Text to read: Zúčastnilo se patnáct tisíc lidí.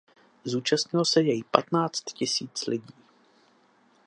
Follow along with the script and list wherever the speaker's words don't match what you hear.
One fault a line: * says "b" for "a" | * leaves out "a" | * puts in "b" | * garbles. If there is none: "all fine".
* puts in "jej"